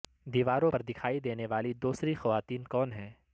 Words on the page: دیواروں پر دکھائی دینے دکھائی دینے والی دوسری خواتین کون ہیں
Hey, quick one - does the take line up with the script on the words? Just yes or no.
no